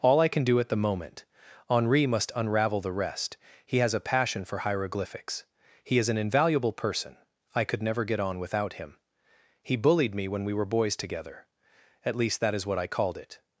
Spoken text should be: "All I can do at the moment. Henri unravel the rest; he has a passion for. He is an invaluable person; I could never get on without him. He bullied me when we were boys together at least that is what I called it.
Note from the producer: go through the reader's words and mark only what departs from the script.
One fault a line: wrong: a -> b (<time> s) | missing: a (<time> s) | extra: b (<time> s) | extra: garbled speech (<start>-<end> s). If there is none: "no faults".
extra: must (2.1 s)
extra: hieroglyphics (4.6 s)